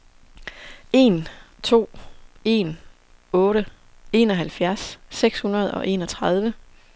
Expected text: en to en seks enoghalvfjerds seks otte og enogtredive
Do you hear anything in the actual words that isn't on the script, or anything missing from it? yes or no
yes